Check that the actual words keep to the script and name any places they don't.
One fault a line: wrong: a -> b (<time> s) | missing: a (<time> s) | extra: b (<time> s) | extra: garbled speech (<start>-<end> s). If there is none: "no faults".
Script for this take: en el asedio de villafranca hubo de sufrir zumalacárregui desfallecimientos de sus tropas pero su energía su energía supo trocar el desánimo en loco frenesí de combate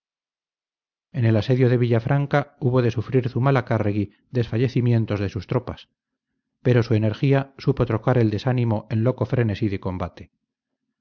missing: su energía (7.5 s)